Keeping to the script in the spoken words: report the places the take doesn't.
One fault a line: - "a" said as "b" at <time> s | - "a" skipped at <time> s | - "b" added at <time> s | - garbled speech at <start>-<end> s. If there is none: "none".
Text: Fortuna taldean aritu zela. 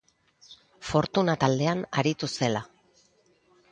none